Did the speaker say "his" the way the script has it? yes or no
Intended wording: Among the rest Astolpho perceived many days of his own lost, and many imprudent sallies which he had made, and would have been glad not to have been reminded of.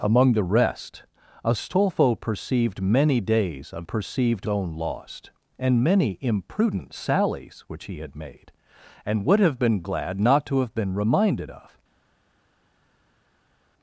no